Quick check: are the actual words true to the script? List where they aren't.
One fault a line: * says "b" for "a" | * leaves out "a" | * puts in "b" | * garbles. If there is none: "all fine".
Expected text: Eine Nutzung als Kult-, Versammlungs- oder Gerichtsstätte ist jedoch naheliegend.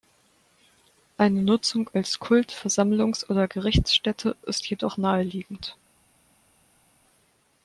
all fine